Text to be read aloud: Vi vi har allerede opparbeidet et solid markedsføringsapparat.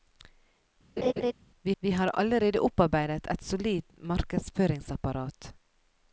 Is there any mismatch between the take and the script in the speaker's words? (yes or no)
no